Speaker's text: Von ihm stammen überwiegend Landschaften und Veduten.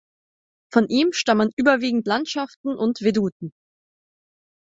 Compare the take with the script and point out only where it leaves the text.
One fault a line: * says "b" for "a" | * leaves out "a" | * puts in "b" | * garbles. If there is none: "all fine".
all fine